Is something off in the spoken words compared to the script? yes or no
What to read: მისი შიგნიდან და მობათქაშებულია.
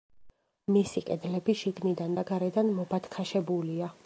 yes